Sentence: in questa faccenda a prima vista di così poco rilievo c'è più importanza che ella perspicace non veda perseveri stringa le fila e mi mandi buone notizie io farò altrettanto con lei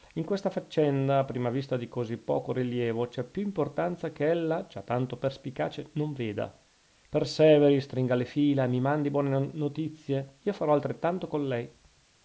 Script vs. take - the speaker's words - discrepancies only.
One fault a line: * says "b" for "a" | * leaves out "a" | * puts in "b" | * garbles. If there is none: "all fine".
* puts in "già tanto"